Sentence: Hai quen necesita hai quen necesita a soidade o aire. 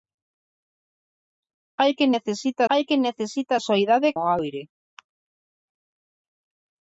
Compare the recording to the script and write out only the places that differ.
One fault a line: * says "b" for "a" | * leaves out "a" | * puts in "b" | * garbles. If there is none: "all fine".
all fine